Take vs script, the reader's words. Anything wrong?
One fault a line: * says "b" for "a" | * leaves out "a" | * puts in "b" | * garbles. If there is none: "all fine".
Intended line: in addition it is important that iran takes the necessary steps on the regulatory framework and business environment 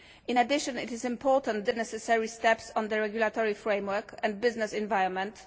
* leaves out "that iran takes"